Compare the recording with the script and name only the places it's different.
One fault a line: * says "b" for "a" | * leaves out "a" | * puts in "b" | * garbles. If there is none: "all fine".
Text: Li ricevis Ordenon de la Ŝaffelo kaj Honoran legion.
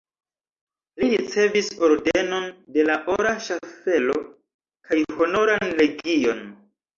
* puts in "Ora"